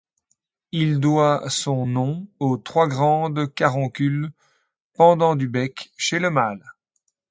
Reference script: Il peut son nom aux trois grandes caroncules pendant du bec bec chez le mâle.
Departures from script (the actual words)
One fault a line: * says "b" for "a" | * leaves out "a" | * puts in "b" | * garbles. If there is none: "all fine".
* says "doit" for "peut"
* leaves out "bec"